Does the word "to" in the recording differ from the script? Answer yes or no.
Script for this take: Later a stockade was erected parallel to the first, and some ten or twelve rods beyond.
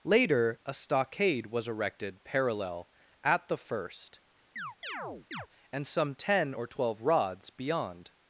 yes